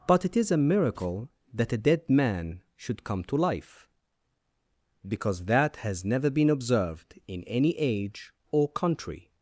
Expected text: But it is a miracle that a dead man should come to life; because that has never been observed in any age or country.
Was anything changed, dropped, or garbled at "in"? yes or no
no